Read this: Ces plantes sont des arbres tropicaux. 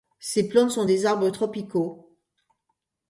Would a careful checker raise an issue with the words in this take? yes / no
no